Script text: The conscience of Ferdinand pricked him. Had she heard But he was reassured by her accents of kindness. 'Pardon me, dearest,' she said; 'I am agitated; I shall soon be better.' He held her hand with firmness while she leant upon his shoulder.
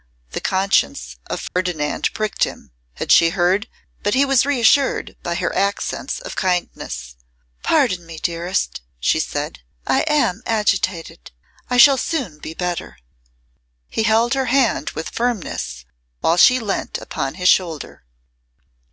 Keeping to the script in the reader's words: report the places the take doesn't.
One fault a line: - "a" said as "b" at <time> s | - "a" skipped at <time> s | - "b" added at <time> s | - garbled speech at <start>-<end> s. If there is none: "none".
none